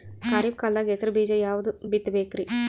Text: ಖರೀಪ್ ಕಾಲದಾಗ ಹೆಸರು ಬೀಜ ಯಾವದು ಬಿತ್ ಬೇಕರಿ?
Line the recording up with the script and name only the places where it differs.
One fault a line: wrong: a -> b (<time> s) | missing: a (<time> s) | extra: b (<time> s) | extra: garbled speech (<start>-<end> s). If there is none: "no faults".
no faults